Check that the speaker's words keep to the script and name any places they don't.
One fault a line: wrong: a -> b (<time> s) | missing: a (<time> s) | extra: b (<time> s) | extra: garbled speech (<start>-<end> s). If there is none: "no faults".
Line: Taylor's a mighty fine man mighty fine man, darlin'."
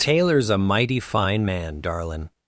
missing: mighty fine man (1.8 s)